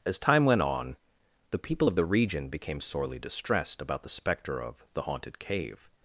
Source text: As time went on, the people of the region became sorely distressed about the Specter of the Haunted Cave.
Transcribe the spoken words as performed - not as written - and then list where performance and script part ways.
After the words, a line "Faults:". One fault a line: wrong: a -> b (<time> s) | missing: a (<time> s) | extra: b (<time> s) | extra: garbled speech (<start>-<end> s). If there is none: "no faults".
As time went on, the people of the region became sorely distressed about the Specter of the Haunted Cave.
Faults:
no faults